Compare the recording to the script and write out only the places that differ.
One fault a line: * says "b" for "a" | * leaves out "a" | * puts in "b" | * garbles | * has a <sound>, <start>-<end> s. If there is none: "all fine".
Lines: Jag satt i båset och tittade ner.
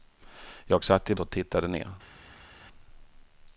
* leaves out "båset"